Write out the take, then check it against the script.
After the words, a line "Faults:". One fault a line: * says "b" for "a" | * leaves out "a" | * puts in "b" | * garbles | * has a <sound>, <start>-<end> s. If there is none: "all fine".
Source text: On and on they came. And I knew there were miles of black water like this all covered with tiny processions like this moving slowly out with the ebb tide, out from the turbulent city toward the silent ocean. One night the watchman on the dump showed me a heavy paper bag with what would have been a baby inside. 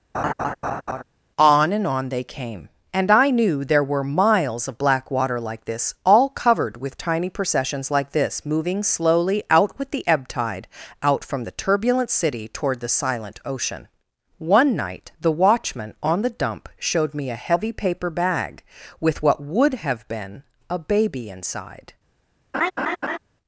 On and on they came. And I knew there were miles of black water like this all covered with tiny processions like this moving slowly out with the ebb tide, out from the turbulent city toward the silent ocean. One night the watchman on the dump showed me a heavy paper bag with what would have been a baby inside.
Faults:
* has a laugh, 0.1-1.0 s
* has a laugh, 22.5-23.2 s